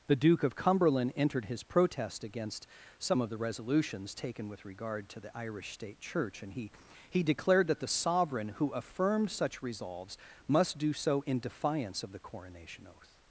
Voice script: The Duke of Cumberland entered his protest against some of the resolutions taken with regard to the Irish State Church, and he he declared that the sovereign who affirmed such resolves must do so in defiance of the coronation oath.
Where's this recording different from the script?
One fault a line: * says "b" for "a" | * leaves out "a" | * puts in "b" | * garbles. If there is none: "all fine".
all fine